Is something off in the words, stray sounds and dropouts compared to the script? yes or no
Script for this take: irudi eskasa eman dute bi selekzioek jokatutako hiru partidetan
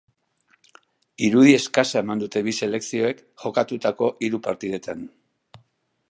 no